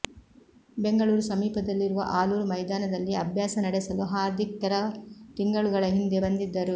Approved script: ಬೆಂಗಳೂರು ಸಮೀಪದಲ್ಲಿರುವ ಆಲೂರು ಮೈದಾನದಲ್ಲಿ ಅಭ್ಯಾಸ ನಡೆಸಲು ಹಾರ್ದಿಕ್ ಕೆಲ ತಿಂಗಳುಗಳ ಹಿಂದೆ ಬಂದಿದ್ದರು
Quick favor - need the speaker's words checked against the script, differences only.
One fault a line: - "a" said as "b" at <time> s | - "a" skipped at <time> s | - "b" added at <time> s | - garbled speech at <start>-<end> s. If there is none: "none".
none